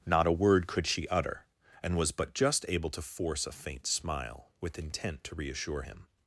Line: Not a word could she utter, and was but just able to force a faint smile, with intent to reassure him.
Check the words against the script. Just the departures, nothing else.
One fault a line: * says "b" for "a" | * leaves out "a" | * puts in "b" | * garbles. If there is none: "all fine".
all fine